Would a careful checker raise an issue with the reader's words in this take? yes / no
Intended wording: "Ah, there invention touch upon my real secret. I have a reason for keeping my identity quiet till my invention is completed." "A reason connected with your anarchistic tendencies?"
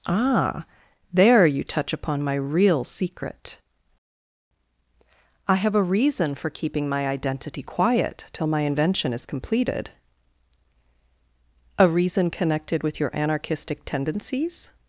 yes